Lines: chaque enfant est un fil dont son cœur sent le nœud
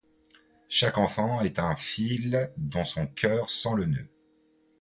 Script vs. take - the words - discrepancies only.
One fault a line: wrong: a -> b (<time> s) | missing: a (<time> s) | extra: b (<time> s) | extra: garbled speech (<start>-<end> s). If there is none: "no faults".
no faults